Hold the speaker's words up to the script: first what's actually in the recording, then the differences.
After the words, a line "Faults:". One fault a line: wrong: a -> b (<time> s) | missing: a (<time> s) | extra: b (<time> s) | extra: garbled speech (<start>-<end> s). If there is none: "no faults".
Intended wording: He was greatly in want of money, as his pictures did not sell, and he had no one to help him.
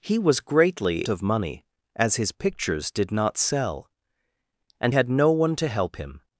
He was greatly of money, as his pictures did not sell, and had no one to help him.
Faults:
missing: in want (1.1 s)
missing: he (4.9 s)